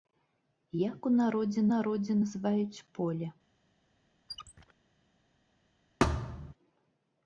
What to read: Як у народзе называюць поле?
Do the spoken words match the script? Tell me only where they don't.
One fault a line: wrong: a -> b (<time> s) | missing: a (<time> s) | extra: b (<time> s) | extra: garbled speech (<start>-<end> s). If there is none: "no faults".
extra: народзе (1.7 s)